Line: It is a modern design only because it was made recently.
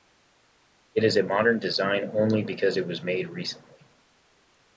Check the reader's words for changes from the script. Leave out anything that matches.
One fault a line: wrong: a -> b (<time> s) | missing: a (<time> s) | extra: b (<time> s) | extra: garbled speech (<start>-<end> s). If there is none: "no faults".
no faults